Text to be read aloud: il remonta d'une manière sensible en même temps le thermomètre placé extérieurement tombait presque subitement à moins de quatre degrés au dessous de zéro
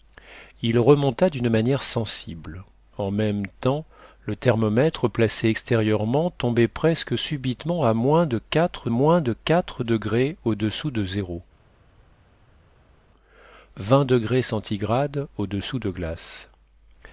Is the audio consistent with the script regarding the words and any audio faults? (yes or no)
no